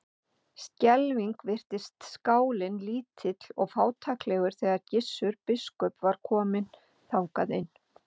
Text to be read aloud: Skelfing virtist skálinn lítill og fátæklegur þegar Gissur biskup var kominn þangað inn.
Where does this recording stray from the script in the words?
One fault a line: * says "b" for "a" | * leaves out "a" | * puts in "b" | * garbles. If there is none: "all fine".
all fine